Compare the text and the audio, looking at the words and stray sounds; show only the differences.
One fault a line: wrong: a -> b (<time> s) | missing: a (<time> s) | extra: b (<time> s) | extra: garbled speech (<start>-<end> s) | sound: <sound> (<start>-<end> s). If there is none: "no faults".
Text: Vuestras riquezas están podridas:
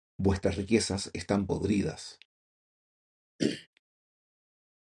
sound: throat clearing (3.4-3.7 s)